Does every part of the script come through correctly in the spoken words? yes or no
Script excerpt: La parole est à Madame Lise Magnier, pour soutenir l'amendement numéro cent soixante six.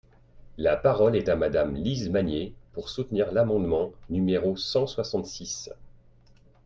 yes